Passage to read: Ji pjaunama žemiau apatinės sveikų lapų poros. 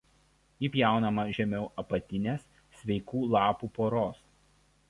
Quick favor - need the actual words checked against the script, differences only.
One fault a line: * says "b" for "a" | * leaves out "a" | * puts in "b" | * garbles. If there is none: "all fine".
all fine